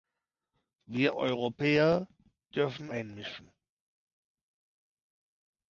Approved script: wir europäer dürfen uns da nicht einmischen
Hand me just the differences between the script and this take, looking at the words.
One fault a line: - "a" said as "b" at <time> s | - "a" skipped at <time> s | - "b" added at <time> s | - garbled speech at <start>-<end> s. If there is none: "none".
- "uns da nicht" skipped at 2.9 s